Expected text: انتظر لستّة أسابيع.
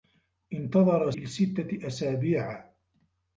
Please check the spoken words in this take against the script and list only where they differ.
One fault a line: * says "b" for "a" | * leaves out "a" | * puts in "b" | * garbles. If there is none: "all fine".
all fine